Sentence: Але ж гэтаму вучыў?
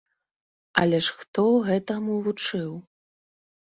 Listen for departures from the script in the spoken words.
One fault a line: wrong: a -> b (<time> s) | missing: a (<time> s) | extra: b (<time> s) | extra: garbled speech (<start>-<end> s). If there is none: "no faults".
extra: хто (1.2 s)